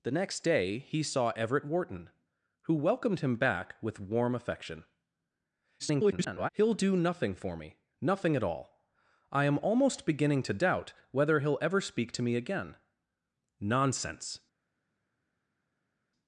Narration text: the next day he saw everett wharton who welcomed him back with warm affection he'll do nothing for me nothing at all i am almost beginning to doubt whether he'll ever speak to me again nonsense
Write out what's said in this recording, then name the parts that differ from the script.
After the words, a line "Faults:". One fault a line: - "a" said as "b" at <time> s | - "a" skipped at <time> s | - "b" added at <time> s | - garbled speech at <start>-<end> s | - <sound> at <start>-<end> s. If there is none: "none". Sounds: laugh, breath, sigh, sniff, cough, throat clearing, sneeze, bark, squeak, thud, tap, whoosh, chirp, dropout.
the next day he saw everett wharton who welcomed him back with warm affection [garbled] he'll do nothing for me nothing at all i am almost beginning to doubt whether he'll ever speak to me again nonsense
Faults:
- garbled speech at 5.8-6.5 s